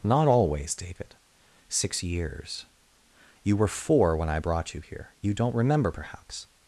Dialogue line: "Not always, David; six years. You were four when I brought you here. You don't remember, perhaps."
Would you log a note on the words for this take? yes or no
no